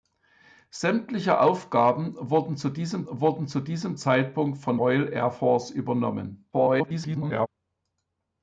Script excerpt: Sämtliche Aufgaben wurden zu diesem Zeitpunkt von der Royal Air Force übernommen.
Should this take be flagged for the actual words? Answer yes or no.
yes